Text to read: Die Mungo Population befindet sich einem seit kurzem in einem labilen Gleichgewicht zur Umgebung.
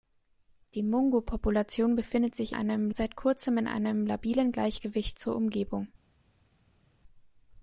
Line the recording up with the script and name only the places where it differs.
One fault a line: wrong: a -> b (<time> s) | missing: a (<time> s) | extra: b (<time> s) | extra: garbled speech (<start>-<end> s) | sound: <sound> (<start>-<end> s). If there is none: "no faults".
no faults